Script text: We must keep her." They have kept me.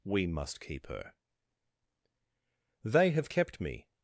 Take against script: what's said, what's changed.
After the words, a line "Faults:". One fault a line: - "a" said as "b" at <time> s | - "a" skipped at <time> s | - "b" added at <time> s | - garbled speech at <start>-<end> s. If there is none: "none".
We must keep her." They have kept me.
Faults:
none